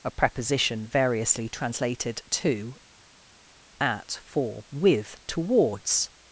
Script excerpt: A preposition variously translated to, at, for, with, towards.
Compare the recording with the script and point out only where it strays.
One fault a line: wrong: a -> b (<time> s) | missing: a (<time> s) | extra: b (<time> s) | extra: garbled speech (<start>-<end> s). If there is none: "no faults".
no faults